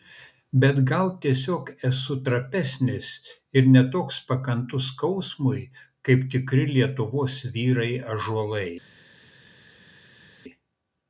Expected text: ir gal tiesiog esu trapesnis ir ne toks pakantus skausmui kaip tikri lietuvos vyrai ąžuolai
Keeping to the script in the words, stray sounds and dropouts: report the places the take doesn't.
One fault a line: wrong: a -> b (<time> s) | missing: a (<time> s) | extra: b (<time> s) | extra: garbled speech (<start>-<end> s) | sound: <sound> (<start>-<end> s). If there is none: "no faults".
wrong: ir -> bet (0.6 s)